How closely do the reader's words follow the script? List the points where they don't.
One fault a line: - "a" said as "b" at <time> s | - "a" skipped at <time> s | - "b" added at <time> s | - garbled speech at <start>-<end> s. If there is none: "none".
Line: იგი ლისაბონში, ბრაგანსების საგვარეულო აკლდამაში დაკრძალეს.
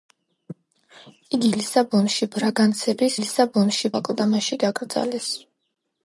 - "საგვარეულო" said as "ლისაბონში" at 3.2 s